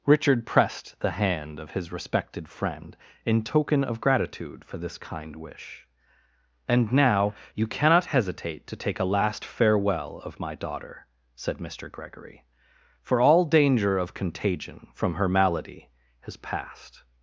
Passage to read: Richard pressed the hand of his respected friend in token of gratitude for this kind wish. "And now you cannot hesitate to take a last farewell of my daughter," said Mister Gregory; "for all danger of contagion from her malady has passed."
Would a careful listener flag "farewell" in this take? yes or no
no